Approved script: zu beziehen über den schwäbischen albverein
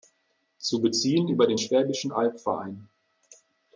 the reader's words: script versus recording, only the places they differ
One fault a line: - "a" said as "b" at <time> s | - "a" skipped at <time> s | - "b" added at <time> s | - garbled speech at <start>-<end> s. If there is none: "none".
none